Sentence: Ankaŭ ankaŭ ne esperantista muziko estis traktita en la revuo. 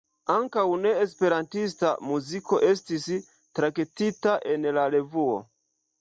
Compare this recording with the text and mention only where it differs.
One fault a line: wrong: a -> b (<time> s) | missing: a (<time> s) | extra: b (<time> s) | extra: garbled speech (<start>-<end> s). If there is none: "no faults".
missing: ankaŭ (0.6 s)